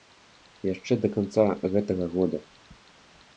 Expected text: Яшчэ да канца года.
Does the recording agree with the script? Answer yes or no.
no